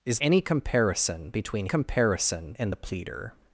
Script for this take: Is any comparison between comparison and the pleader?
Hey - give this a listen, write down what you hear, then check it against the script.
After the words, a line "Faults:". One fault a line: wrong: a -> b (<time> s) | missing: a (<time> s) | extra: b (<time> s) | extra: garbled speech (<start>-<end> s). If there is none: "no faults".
Is any comparison between comparison and the pleader?
Faults:
no faults